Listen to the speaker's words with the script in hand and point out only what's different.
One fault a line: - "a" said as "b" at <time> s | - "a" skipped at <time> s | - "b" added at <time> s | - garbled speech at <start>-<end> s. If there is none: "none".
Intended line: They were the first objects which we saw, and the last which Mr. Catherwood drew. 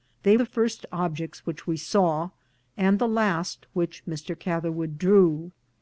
- "were" skipped at 0.3 s